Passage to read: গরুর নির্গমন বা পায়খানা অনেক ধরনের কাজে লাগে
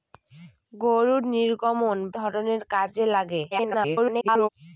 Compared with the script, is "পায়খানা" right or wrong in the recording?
wrong